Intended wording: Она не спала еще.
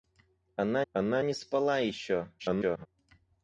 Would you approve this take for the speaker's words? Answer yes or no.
no